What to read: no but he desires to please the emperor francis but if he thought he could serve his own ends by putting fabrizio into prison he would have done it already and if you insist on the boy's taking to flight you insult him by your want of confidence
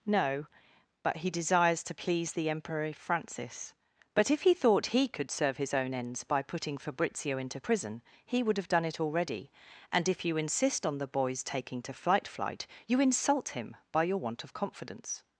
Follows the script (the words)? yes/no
no